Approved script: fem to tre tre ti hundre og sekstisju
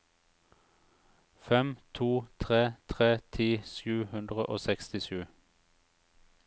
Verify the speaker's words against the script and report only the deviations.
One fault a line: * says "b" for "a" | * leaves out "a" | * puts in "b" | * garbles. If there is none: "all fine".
* puts in "sju"